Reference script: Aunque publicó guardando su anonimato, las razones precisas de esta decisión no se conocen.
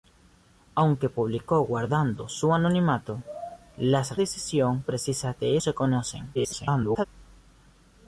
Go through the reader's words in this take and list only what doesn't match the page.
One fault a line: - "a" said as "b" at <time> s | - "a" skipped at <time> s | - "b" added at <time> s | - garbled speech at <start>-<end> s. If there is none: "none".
- "razones" said as "decisión" at 4.1 s
- "esta decisión no" skipped at 5.6 s
- garbled speech at 6.3-7.1 s